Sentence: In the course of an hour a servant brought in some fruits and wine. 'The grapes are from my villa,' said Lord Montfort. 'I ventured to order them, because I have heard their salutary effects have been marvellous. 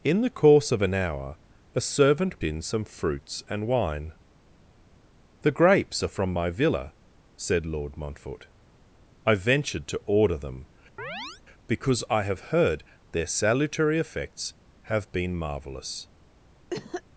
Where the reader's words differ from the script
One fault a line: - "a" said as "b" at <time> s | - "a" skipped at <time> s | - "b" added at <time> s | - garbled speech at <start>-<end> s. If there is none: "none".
- "brought" skipped at 2.4 s